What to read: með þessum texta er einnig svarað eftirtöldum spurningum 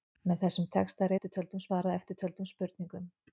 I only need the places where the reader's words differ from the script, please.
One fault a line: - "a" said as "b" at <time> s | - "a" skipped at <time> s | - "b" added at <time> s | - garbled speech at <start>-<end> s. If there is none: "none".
- "einnig" said as "eftirtöldum" at 1.1 s